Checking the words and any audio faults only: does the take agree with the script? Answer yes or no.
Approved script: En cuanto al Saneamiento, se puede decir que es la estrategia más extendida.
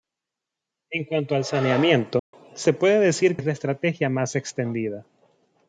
no